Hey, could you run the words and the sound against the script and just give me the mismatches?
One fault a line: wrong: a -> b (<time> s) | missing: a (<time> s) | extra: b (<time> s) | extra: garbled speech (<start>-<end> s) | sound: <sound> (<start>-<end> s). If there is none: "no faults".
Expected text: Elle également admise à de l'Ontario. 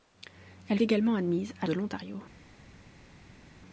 no faults